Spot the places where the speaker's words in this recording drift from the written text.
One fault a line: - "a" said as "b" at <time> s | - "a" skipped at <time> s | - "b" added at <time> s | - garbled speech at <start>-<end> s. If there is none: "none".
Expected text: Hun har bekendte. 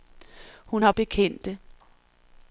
none